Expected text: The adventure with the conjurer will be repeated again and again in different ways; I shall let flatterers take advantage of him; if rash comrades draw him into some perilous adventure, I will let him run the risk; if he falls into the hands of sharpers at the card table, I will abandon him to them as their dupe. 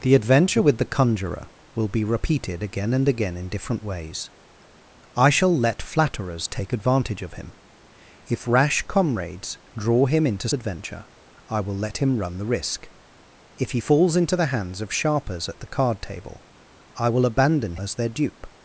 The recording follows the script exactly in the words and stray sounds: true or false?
false